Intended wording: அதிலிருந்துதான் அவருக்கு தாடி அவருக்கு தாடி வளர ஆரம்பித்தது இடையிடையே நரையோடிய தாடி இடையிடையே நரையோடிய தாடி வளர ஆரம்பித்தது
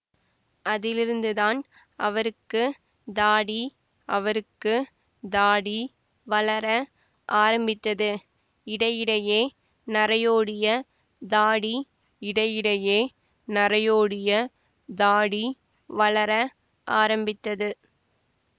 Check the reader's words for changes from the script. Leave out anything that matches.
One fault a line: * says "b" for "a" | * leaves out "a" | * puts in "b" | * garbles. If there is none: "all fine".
all fine